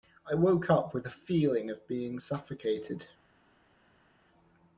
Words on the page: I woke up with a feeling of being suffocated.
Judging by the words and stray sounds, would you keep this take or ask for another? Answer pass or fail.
pass